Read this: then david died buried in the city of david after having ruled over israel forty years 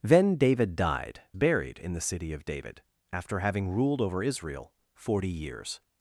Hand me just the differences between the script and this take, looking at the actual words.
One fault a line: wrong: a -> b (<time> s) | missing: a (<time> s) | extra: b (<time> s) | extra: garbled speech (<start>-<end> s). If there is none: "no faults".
no faults